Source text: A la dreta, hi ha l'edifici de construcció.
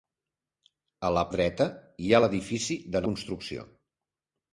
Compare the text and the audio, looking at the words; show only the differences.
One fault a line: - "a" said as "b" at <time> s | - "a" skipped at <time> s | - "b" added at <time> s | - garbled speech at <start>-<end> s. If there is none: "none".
none